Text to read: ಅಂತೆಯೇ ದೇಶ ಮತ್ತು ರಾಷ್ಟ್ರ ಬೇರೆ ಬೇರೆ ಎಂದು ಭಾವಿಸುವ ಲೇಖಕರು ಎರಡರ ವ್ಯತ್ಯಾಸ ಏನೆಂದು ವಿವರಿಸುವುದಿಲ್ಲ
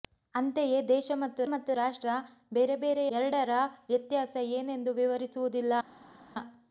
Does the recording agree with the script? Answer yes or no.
no